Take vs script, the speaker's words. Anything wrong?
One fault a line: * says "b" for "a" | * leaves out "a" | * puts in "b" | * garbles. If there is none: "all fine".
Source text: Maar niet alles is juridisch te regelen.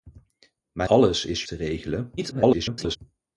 * leaves out "niet"
* leaves out "juridisch"
* garbles